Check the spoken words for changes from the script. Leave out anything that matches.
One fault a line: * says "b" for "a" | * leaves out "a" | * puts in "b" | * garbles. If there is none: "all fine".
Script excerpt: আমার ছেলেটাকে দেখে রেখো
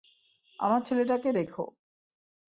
* leaves out "দেখে"